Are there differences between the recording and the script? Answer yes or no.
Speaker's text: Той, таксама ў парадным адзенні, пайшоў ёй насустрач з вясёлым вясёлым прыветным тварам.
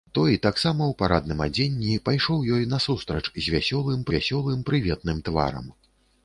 no